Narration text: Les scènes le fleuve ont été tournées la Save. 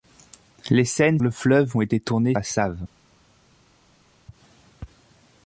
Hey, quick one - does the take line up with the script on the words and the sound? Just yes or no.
yes